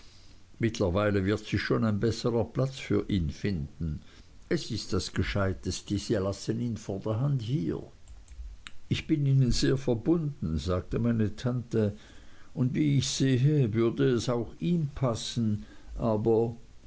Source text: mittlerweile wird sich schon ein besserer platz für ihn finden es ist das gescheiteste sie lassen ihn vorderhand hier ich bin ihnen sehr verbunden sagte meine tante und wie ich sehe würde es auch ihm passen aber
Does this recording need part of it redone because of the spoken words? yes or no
no